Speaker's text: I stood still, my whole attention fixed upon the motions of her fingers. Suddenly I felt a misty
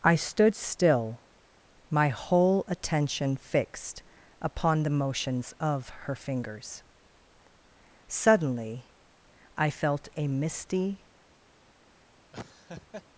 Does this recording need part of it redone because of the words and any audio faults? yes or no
yes